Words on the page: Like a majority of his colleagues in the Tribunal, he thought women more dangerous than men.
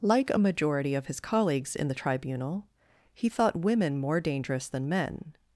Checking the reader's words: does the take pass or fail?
pass